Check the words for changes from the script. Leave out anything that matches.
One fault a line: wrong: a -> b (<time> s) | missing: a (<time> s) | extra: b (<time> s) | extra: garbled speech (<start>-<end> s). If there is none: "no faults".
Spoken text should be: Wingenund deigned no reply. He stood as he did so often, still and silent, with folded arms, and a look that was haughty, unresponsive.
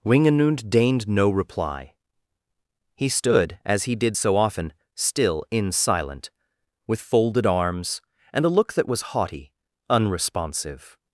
wrong: and -> in (5.5 s)